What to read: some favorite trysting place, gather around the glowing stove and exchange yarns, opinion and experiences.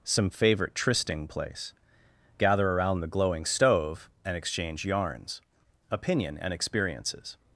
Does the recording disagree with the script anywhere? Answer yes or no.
no